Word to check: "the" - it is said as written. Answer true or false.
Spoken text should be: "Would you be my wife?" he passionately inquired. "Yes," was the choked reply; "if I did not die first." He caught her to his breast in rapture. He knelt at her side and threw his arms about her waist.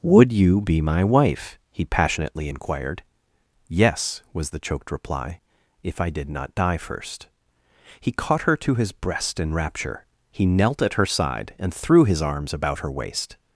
true